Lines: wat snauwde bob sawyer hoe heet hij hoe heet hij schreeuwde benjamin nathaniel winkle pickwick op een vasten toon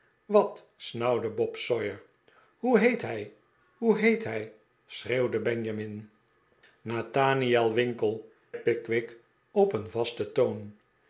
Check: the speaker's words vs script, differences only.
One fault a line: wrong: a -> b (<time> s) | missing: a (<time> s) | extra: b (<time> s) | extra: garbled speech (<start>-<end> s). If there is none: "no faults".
no faults